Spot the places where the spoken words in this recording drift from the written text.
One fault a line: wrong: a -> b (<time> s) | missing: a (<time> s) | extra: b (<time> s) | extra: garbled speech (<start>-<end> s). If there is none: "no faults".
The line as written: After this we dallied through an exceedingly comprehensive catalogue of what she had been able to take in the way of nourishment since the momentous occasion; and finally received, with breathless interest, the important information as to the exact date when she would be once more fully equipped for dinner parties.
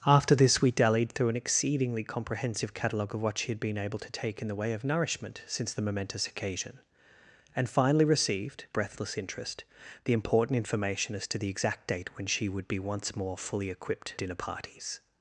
missing: with (8.7 s)
missing: for (14.1 s)